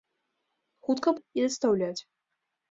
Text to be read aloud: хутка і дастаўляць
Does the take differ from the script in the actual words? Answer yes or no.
no